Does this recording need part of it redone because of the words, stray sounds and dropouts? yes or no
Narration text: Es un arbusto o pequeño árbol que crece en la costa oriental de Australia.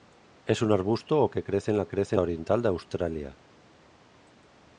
yes